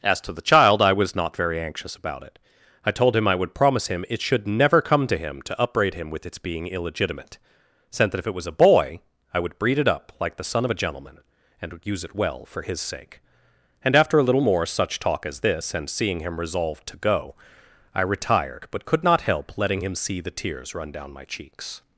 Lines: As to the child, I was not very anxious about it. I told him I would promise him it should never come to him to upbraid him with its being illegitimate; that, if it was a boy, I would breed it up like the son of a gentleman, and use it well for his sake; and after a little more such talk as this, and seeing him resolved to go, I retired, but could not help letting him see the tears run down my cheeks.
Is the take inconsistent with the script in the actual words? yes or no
yes